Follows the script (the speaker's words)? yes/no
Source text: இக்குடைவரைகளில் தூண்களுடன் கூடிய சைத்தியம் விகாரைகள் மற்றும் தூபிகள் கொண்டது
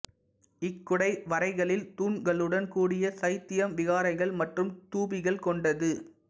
yes